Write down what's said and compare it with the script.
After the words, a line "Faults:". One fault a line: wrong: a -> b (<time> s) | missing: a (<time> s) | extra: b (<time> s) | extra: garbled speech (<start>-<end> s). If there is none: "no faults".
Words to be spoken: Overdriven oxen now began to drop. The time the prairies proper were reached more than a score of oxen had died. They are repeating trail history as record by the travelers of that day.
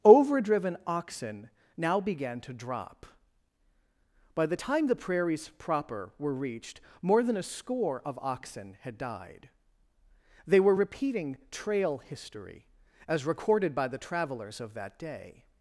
Overdriven oxen now began to drop. By the time the prairies proper were reached more than a score of oxen had died. They were repeating trail history as recorded by the travelers of that day.
Faults:
extra: By (4.3 s)
wrong: are -> were (10.6 s)
wrong: record -> recorded (13.2 s)